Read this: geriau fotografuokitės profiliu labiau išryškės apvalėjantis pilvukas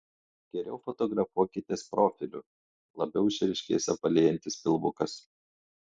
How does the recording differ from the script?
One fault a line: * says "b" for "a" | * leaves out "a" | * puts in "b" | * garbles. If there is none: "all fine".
all fine